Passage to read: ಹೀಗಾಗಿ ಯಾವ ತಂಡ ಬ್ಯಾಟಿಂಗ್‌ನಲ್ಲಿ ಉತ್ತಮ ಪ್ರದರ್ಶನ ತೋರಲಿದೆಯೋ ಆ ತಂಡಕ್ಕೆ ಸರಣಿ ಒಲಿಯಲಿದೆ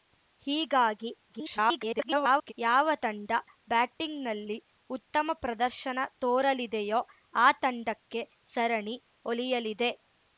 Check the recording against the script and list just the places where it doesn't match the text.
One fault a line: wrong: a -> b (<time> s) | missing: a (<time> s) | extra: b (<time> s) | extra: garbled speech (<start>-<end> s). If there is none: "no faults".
extra: garbled speech (1.3-2.5 s)